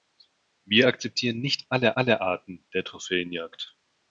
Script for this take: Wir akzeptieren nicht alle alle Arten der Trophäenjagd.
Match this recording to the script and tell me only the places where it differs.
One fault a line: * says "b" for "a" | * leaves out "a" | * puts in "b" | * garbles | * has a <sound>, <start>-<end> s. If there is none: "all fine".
all fine